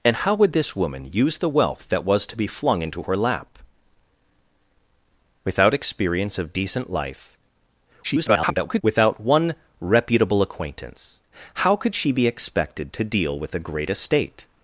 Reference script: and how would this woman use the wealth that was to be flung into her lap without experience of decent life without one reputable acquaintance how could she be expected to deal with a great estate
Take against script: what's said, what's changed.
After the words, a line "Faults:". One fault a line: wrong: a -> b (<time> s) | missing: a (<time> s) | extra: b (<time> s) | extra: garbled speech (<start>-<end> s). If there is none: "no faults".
and how would this woman use the wealth that was to be flung into her lap without experience of decent life [garbled] without one reputable acquaintance how could she be expected to deal with a great estate
Faults:
extra: garbled speech (8.0-8.8 s)